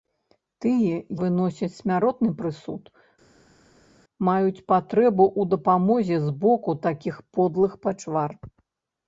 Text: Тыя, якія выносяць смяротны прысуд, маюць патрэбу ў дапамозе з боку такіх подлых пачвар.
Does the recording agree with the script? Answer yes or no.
no